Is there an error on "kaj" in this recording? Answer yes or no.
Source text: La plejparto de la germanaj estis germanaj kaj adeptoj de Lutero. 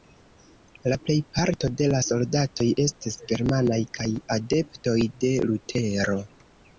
no